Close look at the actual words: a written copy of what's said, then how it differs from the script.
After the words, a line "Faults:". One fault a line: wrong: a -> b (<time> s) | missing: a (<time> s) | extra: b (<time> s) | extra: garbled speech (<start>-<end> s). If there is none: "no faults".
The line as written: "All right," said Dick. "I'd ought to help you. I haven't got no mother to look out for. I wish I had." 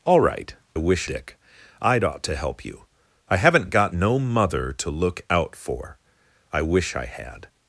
"All right," wish Dick. "I'd ought to help you. I haven't got no mother to look out for. I wish I had."
Faults:
wrong: said -> wish (0.8 s)